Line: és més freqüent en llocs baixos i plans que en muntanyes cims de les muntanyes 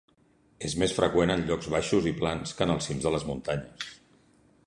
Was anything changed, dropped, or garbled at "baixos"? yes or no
no